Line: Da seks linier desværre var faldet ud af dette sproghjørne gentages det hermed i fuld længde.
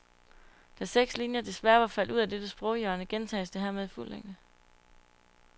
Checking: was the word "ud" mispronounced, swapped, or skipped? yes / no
no